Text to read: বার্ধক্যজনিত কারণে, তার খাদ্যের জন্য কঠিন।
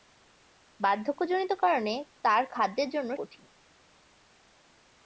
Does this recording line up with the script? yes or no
yes